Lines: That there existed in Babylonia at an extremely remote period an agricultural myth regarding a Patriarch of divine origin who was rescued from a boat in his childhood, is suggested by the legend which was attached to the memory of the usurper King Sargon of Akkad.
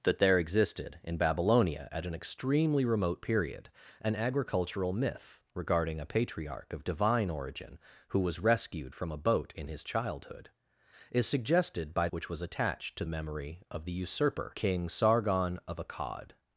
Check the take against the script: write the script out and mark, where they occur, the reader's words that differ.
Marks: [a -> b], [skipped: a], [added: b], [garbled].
That there existed in Babylonia at an extremely remote period an agricultural myth regarding a Patriarch of divine origin who was rescued from a boat in his childhood, is suggested by [skipped: the legend] which was attached to [skipped: the] memory of the usurper King Sargon of Akkad.